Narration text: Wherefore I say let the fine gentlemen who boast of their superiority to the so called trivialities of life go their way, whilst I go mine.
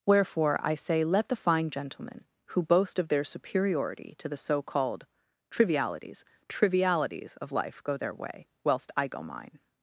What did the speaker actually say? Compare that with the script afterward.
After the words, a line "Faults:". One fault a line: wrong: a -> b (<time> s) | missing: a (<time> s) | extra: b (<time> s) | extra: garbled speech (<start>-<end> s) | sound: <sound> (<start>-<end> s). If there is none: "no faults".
Wherefore I say let the fine gentlemen who boast of their superiority to the so called trivialities trivialities of life go their way, whilst I go mine.
Faults:
extra: trivialities (6.5 s)